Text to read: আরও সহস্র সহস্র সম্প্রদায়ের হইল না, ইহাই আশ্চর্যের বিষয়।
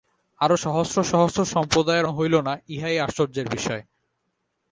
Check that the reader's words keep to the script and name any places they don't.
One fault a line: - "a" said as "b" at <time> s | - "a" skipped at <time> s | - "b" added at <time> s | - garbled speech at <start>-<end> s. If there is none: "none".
none